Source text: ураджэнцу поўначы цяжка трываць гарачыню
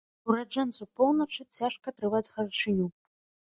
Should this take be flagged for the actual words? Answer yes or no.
no